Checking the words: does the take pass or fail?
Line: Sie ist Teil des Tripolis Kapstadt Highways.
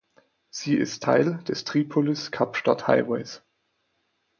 pass